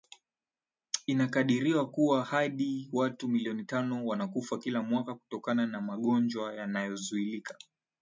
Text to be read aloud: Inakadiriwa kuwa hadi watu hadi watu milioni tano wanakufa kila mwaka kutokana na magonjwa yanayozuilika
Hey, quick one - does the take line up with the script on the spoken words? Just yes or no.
no